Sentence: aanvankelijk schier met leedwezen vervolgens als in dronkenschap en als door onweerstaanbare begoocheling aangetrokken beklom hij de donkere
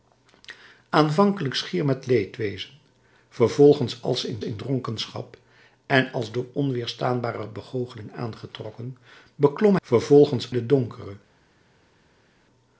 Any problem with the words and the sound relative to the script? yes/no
yes